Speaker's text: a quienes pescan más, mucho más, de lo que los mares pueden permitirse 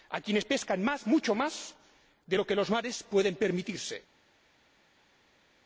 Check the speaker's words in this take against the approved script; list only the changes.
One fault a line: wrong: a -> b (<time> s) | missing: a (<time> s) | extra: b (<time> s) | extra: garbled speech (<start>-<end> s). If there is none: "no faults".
no faults